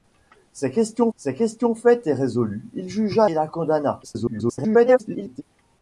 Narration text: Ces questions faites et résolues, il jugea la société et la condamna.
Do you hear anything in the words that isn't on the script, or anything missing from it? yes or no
yes